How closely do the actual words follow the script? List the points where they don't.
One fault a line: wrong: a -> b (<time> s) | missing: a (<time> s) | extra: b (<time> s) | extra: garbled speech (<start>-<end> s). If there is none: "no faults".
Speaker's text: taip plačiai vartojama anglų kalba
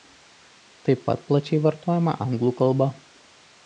extra: pat (1.1 s)